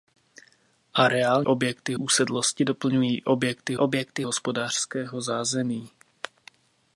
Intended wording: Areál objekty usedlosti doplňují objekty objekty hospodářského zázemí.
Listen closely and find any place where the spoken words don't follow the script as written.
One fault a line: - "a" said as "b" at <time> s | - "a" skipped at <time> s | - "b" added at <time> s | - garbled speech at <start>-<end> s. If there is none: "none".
none